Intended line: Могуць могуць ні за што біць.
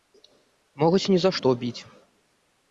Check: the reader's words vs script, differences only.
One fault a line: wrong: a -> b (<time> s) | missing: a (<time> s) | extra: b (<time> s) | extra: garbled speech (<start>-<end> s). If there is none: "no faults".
missing: могуць (1.0 s)